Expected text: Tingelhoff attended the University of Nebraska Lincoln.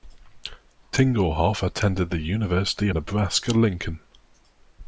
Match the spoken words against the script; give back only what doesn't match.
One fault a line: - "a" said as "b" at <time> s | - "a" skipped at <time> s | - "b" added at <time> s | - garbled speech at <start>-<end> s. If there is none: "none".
- "of" skipped at 2.9 s